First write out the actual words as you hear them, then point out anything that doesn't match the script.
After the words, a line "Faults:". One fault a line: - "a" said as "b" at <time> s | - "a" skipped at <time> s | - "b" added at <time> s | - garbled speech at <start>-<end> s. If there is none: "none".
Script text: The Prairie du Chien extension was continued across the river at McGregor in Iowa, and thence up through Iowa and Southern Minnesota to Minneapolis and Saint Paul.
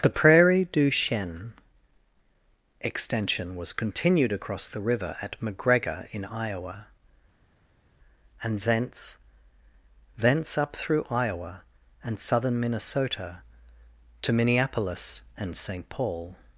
The Prairie du Chien extension was continued across the river at McGregor in Iowa, and thence thence up through Iowa and Southern Minnesota to Minneapolis and Saint Paul.
Faults:
- "thence" added at 10.2 s